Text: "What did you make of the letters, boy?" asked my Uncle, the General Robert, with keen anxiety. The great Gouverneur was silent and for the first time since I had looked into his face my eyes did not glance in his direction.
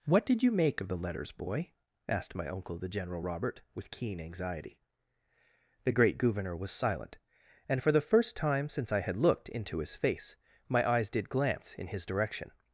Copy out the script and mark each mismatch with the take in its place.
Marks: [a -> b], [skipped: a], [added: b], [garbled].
"What did you make of the letters, boy?" asked my Uncle, the General Robert, with keen anxiety. The great Gouverneur was silent and for the first time since I had looked into his face my eyes did [skipped: not] glance in his direction.